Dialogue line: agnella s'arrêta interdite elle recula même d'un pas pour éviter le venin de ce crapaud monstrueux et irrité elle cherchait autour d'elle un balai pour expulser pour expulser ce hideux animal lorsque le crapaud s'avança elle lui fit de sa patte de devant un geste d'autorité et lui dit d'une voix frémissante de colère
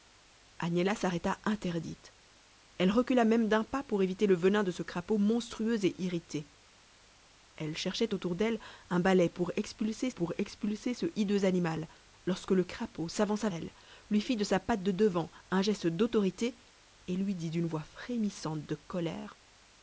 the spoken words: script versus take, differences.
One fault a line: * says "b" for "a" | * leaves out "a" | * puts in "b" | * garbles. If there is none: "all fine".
all fine